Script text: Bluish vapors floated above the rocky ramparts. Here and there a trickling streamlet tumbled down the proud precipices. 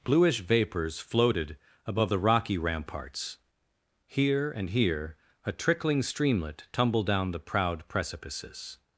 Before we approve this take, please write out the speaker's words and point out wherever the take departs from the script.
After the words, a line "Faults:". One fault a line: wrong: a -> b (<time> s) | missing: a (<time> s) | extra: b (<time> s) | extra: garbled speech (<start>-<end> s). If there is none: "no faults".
Bluish vapors floated above the rocky ramparts. Here and here a trickling streamlet tumbled down the proud precipices.
Faults:
wrong: there -> here (4.7 s)